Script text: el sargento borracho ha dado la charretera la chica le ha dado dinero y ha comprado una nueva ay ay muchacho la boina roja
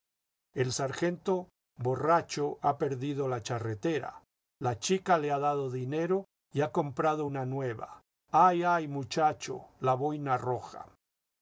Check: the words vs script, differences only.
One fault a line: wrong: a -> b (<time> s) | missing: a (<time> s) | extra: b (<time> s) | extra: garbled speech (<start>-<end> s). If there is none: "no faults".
wrong: dado -> perdido (2.8 s)